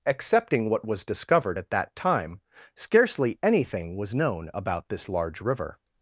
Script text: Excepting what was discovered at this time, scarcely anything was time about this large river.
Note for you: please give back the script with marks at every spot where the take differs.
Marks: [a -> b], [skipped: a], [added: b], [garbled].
Excepting what was discovered at [this -> that] time, scarcely anything was [time -> known] about this large river.